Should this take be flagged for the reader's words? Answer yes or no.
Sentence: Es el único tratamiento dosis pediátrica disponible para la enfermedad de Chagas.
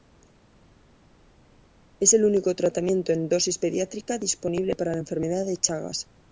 yes